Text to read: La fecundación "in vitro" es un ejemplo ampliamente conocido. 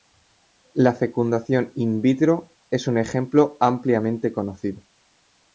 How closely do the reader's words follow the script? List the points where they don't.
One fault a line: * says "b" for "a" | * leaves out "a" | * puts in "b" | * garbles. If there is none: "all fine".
all fine